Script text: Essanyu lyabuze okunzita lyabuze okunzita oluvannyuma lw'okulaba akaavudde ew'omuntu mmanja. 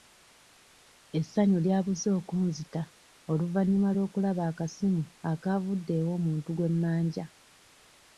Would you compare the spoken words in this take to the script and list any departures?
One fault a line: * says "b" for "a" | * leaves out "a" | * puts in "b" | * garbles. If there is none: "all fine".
* leaves out "lyabuze okunzita"
* puts in "akasimu"
* puts in "gwe"